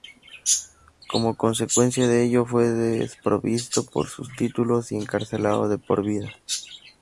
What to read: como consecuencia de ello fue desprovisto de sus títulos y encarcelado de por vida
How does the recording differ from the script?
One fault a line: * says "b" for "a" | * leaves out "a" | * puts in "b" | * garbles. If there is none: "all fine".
all fine